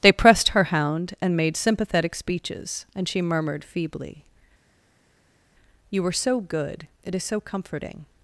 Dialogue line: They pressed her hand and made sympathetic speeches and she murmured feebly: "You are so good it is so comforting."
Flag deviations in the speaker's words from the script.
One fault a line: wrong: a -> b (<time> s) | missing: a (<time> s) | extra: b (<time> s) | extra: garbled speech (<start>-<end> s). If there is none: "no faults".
wrong: hand -> hound (0.7 s)
wrong: are -> were (6.0 s)